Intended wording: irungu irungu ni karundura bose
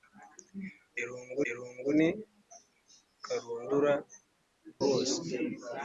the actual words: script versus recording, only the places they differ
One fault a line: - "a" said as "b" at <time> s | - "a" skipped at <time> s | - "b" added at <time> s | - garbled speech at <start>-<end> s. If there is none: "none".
none